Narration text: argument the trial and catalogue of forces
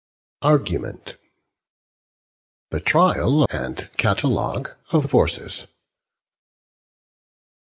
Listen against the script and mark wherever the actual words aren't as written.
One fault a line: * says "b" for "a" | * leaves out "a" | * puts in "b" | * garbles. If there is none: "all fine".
all fine